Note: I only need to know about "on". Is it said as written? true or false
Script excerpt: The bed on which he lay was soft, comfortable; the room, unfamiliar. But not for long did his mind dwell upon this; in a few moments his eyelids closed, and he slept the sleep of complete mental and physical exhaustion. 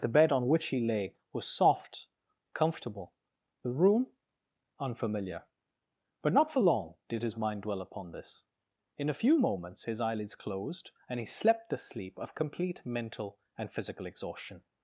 true